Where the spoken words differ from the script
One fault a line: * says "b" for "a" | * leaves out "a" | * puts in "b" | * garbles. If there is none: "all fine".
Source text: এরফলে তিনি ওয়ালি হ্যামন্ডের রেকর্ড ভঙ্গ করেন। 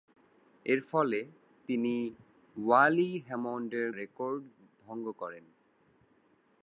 all fine